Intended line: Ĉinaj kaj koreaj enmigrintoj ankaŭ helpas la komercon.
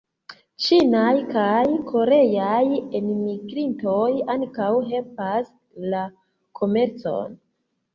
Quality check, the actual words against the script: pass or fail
pass